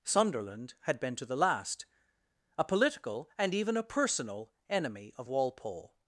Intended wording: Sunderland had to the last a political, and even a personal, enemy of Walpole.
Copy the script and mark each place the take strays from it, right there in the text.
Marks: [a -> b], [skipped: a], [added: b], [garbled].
Sunderland had [added: been] to the last a political, and even a personal, enemy of Walpole.